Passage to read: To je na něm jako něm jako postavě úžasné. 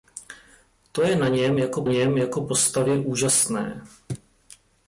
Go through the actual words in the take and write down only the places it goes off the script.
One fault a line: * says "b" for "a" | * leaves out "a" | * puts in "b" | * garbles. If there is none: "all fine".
all fine